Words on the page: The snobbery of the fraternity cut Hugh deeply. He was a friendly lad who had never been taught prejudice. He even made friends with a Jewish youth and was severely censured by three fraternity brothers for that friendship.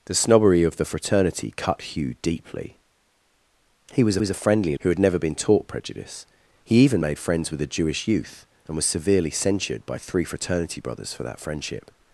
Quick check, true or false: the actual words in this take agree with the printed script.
false